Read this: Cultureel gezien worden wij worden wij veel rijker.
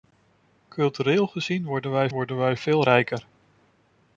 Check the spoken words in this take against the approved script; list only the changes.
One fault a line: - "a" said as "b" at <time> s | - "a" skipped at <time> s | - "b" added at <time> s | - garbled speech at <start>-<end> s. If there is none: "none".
none